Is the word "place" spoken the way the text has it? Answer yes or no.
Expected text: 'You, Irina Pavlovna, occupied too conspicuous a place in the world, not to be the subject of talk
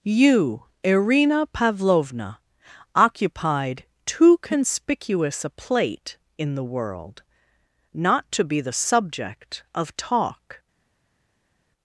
no